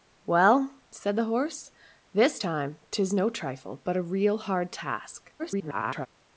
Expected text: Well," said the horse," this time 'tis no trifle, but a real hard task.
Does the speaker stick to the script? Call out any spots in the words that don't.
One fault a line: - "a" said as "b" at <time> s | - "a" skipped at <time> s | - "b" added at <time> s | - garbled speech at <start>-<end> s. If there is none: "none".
- garbled speech at 5.4-6.1 s